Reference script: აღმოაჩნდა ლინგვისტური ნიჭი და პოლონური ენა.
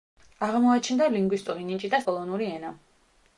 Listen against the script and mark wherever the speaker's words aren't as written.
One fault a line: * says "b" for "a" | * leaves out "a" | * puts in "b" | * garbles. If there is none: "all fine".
all fine